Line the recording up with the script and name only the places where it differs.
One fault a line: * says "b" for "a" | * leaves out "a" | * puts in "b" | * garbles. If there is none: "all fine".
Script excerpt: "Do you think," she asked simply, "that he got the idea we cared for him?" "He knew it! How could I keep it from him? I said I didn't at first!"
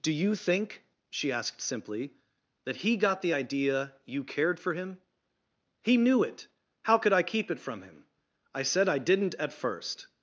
* says "you" for "we"